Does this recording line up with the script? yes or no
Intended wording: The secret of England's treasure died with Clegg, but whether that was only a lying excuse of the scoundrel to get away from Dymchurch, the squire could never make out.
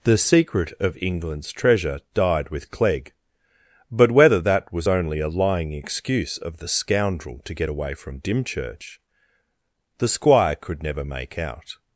yes